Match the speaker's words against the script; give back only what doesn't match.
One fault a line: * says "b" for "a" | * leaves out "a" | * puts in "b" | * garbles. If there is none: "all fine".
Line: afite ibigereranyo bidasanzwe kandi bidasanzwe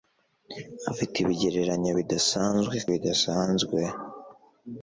* leaves out "kandi"